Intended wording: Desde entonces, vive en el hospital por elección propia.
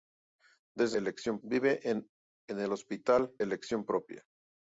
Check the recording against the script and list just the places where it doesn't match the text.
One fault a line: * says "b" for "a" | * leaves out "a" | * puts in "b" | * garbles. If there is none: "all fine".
* says "elección" for "entonces"
* leaves out "por"